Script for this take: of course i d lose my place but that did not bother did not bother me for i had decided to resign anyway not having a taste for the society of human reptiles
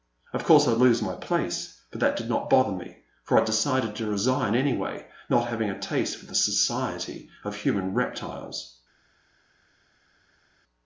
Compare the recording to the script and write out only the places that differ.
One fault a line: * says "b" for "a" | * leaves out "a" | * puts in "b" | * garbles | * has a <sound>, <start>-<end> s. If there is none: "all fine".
* leaves out "did not bother"